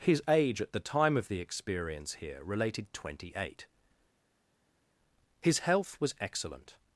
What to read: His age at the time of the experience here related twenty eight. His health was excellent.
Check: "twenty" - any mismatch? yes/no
no